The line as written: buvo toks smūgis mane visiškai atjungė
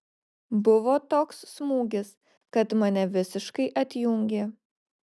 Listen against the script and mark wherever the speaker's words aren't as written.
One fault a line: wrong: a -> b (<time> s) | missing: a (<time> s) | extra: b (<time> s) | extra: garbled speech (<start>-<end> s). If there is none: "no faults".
extra: kad (2.6 s)